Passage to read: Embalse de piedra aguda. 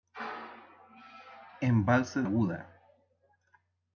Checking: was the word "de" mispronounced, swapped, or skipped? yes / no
yes